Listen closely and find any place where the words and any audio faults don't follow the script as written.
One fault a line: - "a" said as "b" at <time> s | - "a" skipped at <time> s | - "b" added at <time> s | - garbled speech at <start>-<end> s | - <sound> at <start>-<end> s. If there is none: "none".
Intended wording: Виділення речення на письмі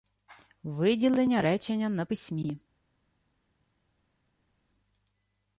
none